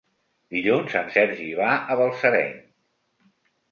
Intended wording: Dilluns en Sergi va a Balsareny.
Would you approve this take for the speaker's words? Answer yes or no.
yes